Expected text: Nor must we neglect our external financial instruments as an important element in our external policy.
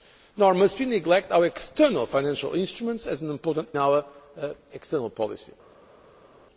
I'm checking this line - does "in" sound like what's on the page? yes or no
no